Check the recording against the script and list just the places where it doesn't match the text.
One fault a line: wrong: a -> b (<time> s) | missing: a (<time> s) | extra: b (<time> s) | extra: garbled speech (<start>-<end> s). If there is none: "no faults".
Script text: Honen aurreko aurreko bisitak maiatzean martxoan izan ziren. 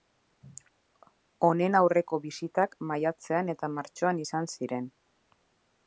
missing: aurreko (2.2 s)
extra: eta (3.5 s)